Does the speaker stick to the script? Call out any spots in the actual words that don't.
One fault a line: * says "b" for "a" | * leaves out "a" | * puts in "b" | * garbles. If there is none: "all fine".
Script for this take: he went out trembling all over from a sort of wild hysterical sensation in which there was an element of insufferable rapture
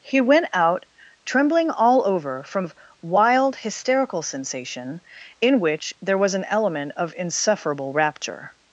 * leaves out "a sort"